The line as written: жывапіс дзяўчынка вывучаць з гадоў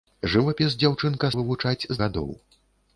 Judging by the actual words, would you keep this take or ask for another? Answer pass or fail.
pass